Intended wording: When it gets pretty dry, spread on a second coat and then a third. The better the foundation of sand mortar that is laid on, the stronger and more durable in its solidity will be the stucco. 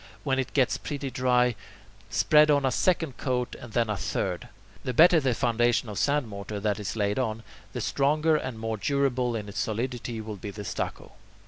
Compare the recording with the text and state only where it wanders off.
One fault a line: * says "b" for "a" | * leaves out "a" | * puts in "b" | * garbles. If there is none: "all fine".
all fine